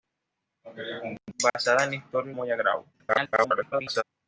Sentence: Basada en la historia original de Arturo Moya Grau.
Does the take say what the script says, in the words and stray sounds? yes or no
no